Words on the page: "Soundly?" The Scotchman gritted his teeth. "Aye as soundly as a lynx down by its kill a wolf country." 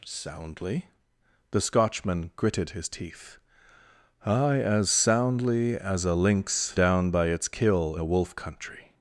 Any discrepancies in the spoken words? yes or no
no